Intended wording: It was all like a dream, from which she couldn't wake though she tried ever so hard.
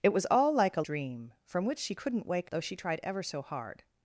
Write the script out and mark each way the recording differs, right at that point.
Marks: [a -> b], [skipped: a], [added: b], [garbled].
It was all like a dream, from which she couldn't wake though she tried ever so hard.